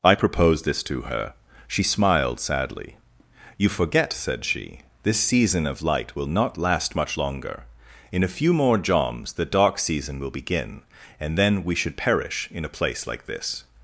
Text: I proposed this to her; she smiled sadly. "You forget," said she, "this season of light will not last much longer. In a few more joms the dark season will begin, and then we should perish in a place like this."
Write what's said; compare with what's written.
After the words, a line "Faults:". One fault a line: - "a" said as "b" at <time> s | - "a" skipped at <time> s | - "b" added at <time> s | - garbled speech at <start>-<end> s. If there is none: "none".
I proposed this to her; she smiled sadly. "You forget," said she, "this season of light will not last much longer. In a few more joms the dark season will begin, and then we should perish in a place like this."
Faults:
none